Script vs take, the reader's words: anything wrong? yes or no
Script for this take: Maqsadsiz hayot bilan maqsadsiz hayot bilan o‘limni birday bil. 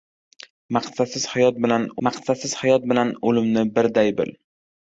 no